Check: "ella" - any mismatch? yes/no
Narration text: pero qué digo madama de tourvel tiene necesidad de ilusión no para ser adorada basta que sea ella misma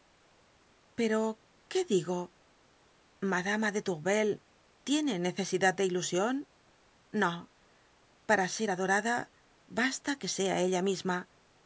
no